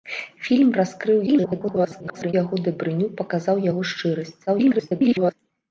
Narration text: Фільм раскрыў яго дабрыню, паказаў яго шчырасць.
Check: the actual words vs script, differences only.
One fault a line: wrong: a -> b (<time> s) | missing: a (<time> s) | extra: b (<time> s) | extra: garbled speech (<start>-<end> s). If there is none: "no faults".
extra: garbled speech (1.3-2.3 s)
extra: garbled speech (4.5-5.3 s)